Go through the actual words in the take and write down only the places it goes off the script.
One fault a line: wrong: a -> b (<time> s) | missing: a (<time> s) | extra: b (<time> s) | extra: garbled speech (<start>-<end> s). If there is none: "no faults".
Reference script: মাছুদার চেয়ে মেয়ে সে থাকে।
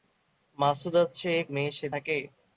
no faults